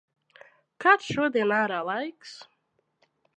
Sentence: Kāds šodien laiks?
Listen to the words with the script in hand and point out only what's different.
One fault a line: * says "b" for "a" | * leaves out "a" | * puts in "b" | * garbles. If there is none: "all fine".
* puts in "ārā"